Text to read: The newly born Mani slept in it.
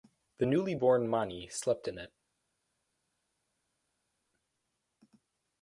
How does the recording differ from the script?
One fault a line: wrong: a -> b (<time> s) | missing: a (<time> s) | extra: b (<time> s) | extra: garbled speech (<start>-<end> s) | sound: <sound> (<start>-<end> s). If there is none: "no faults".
no faults